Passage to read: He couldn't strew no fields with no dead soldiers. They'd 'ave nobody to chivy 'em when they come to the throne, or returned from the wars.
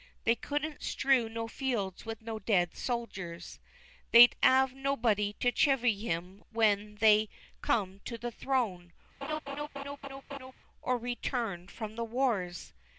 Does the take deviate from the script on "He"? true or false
true